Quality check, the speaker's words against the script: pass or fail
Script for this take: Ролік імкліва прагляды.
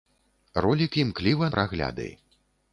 pass